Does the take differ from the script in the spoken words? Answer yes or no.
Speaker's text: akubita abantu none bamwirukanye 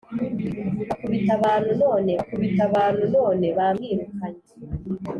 yes